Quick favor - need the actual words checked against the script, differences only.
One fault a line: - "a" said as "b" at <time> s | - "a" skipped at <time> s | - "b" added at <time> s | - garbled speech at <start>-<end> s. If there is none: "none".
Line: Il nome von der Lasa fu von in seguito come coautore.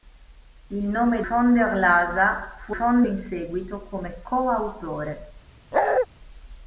none